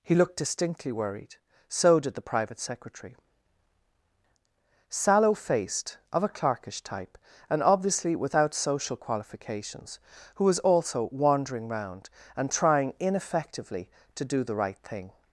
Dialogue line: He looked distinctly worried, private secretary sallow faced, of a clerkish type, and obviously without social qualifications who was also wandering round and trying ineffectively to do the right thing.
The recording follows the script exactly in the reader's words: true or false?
false